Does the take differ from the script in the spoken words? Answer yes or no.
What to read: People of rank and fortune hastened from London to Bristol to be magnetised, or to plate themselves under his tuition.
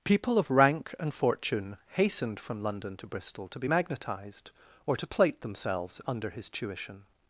no